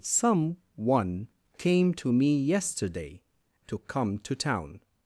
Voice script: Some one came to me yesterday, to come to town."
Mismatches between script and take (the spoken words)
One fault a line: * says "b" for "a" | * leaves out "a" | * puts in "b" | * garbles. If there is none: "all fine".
all fine